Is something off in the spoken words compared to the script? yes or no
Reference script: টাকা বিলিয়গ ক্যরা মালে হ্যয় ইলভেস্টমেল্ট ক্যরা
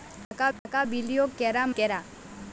yes